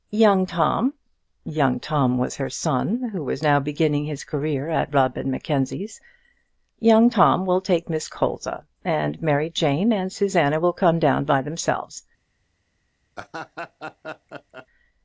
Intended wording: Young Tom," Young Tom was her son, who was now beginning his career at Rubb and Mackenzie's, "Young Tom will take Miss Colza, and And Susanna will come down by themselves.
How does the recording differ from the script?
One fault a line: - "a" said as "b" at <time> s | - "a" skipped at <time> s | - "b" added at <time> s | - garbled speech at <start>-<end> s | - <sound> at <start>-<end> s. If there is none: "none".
- "Mary Jane" added at 9.2 s
- laugh at 13.2-14.7 s